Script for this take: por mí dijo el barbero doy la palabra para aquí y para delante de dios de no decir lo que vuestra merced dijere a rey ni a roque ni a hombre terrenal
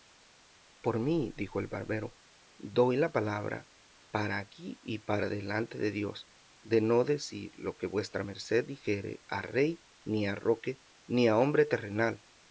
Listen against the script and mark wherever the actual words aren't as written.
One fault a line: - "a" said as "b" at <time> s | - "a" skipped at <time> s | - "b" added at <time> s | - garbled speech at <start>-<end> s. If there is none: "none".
none